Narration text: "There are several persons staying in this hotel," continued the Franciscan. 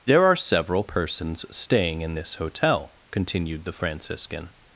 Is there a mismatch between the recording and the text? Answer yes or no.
no